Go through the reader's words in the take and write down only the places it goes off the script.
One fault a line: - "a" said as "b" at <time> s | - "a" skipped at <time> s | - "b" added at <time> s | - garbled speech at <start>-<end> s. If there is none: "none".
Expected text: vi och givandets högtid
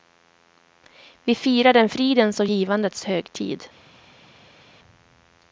- "firar en fridens" added at 1.4 s